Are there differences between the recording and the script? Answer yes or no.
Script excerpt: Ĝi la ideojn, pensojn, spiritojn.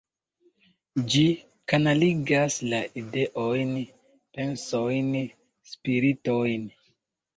yes